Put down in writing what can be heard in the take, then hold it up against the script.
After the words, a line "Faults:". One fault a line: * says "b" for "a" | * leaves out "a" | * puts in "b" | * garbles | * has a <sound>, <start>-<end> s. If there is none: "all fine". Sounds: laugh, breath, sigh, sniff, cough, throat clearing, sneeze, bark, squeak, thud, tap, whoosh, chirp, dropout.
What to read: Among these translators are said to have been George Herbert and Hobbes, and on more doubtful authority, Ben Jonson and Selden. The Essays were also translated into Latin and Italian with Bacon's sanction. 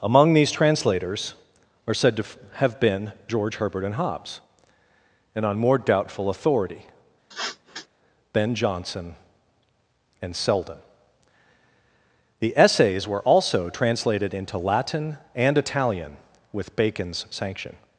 Among these translators are said to have been George Herbert and Hobbes, and on more doubtful authority, Ben Jonson and Selden. The Essays were also translated into Latin and Italian with Bacon's sanction.
Faults:
* has a sniff, 7.3-7.9 s